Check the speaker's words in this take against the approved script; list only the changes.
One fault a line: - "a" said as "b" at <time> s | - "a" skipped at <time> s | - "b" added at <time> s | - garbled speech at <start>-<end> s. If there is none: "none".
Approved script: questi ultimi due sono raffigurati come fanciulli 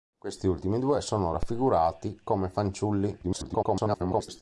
- garbled speech at 3.2-4.4 s